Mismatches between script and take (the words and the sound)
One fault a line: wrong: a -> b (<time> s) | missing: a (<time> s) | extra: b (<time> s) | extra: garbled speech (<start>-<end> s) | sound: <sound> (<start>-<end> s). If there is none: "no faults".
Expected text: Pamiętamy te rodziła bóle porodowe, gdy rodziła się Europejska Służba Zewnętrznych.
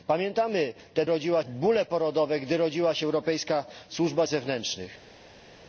no faults